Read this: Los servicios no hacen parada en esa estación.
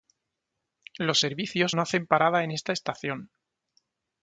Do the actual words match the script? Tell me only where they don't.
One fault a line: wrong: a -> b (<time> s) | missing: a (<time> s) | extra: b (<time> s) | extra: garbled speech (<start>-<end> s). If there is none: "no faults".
wrong: esa -> esta (2.5 s)